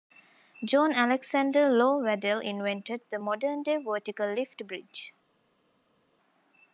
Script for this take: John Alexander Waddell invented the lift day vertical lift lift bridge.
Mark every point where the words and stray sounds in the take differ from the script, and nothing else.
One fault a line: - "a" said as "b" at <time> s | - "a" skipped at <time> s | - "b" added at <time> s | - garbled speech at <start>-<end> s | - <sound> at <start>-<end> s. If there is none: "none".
- "Low" added at 1.7 s
- "lift" said as "modern" at 3.2 s
- "lift" skipped at 4.6 s